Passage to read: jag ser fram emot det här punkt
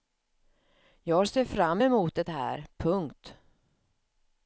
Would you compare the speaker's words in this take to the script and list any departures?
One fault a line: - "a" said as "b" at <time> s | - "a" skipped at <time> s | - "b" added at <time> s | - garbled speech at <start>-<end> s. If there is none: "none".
none